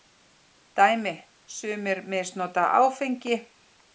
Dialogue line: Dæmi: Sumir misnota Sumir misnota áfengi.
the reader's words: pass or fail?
fail